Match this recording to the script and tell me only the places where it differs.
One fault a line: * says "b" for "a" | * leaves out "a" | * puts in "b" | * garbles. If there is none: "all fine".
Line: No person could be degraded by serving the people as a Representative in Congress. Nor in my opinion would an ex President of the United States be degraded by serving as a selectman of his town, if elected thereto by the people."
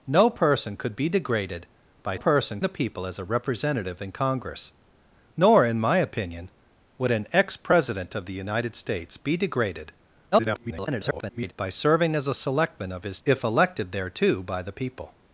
* says "person" for "serving"
* garbles
* leaves out "town"